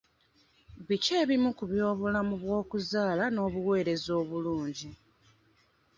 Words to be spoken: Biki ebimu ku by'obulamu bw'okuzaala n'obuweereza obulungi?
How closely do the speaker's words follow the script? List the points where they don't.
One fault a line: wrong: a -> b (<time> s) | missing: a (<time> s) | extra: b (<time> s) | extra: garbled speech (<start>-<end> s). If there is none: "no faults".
no faults